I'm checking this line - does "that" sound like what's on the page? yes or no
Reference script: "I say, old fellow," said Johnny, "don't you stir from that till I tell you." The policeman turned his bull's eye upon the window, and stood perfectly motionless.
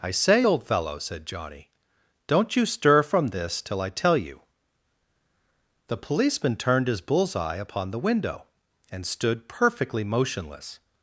no